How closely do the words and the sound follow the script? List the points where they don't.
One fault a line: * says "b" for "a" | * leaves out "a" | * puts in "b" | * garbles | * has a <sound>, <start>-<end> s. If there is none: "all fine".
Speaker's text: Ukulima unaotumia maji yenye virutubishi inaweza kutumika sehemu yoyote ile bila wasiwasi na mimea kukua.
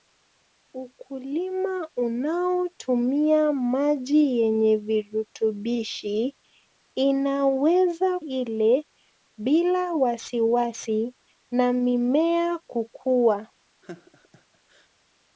* leaves out "kutumika sehemu yoyote"
* has a laugh, 13.8-14.9 s